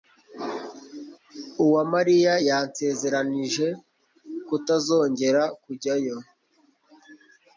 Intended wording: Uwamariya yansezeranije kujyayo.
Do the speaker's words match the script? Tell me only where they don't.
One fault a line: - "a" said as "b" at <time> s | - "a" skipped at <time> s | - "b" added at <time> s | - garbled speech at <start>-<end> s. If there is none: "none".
- "kutazongera" added at 4.5 s